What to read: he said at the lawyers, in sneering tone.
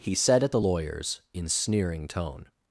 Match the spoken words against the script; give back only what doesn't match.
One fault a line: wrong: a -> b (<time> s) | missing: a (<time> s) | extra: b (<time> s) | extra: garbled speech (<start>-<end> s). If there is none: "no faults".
no faults